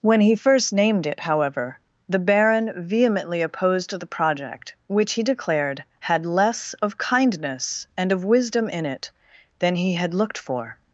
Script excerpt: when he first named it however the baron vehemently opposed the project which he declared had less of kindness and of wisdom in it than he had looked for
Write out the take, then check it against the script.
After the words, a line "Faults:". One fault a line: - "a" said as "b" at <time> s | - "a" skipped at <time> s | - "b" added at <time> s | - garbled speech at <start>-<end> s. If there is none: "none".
when he first named it however the baron vehemently opposed the project which he declared had less of kindness and of wisdom in it than he had looked for
Faults:
none